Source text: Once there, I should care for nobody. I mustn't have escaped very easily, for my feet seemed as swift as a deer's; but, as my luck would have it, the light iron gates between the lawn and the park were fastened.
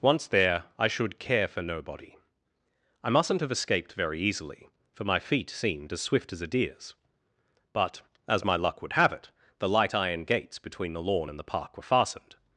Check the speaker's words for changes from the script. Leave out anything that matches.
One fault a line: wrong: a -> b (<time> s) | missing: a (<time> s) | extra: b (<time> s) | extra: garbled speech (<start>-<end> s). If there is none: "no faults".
no faults